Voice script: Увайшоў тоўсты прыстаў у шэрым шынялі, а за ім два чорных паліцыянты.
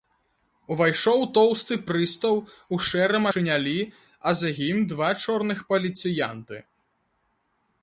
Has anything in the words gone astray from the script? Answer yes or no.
no